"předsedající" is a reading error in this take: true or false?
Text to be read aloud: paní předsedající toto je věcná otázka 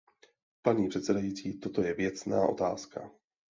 false